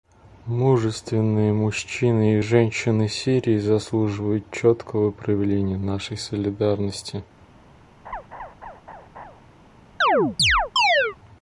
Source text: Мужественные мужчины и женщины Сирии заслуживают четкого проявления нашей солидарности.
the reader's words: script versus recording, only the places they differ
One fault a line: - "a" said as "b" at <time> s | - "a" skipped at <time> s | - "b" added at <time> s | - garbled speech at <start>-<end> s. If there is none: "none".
none